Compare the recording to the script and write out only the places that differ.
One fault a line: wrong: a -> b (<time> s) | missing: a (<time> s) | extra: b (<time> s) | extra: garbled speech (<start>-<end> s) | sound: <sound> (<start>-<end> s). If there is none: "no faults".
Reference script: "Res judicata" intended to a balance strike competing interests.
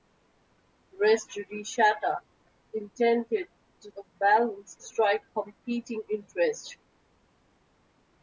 no faults